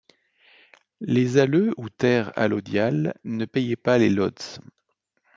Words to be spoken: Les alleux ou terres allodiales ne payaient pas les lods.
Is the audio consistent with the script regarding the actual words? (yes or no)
yes